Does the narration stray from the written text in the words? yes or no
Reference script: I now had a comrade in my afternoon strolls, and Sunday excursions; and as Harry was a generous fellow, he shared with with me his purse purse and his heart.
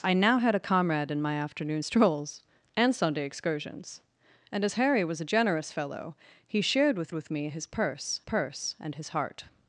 no